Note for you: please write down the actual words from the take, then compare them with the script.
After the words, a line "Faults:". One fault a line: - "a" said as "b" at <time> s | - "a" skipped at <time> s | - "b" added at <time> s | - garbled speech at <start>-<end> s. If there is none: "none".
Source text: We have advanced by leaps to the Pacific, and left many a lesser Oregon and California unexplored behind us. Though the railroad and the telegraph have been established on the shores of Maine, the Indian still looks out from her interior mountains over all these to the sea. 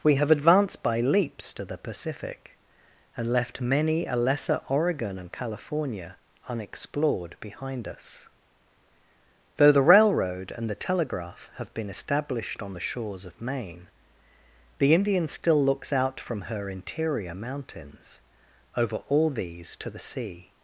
We have advanced by leaps to the Pacific, and left many a lesser Oregon and California unexplored behind us. Though the railroad and the telegraph have been established on the shores of Maine, the Indian still looks out from her interior mountains over all these to the sea.
Faults:
none